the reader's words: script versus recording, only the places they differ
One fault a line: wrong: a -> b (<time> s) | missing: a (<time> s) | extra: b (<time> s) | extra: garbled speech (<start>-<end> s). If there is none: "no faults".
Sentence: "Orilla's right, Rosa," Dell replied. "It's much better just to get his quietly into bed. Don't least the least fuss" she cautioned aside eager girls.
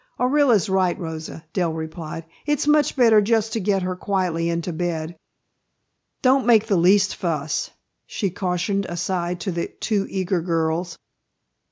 wrong: his -> her (3.8 s)
wrong: least -> make (6.4 s)
extra: to the two (9.4 s)